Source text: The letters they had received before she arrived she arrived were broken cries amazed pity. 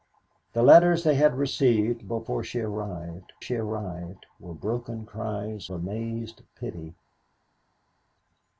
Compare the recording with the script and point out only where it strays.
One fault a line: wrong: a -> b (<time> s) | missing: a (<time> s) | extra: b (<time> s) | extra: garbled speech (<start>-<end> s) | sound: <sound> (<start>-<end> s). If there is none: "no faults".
no faults